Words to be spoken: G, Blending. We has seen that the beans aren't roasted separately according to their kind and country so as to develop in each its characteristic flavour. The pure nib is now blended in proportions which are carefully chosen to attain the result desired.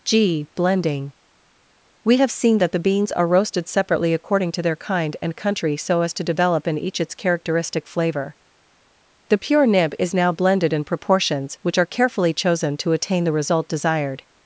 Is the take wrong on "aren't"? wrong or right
wrong